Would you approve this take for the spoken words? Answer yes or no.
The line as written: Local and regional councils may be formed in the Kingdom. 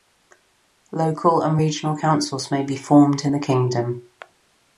yes